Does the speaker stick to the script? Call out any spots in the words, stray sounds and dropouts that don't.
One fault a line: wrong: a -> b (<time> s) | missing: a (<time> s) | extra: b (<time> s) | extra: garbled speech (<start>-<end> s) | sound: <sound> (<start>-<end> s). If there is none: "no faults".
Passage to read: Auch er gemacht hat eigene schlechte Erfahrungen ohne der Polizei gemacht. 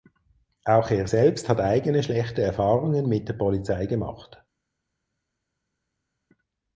wrong: gemacht -> selbst (1.0 s)
wrong: ohne -> mit (3.1 s)